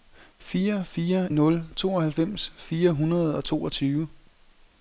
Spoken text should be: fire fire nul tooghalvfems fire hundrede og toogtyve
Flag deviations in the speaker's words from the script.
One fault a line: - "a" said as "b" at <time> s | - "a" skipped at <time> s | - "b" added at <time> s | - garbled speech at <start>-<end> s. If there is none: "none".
none